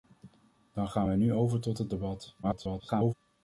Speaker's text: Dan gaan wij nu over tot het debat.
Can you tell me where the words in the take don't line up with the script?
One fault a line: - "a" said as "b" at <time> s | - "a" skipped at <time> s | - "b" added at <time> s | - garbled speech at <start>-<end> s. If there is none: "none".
- garbled speech at 2.4-3.1 s